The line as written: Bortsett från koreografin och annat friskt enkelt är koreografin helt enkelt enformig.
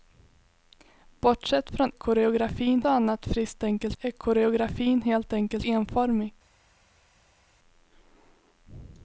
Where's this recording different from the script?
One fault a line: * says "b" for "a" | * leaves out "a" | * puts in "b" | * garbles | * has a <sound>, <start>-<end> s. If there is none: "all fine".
all fine